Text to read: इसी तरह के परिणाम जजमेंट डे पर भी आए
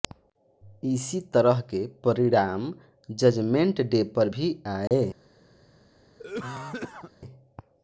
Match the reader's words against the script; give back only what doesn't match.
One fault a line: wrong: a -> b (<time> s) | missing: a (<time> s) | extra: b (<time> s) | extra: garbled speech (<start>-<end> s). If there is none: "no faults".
no faults